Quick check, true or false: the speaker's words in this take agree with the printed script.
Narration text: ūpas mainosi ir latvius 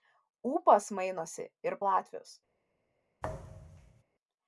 true